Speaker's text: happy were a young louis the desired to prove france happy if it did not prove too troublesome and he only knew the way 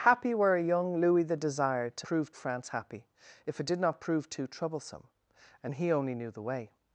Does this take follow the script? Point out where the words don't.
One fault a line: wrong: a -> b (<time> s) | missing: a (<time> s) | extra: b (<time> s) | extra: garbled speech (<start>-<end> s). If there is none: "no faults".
no faults